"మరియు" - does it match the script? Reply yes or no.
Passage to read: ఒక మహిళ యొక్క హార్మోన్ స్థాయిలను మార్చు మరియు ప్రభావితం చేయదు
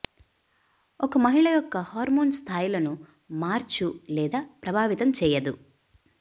no